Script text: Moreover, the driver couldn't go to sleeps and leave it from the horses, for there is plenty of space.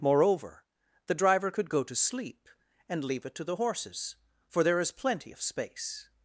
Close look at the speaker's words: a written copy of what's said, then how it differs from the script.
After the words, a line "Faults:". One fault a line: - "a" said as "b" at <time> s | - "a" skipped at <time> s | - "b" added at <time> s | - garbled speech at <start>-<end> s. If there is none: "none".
Moreover, the driver could go to sleep and leave it to the horses, for there is plenty of space.
Faults:
- "couldn't" said as "could" at 1.5 s
- "sleeps" said as "sleep" at 1.9 s
- "from" said as "to" at 3.3 s